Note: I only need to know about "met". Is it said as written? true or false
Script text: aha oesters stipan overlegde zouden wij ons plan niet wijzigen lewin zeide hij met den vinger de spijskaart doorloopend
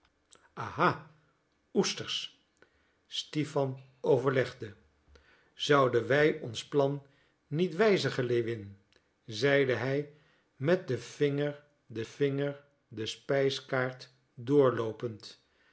true